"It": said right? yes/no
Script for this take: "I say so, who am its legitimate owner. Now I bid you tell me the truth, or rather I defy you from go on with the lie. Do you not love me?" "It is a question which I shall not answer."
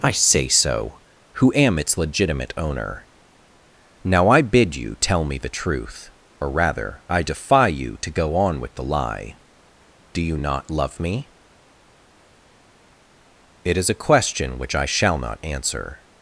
yes